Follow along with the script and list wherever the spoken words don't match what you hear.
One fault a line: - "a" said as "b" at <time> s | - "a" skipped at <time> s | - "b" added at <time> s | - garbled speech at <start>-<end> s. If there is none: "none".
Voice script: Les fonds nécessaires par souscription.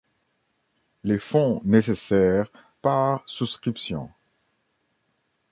none